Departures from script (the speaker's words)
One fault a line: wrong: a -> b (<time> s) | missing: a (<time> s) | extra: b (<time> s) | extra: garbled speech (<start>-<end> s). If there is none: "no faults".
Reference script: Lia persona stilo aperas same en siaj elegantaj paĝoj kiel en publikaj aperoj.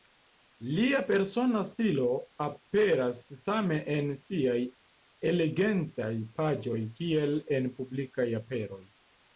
no faults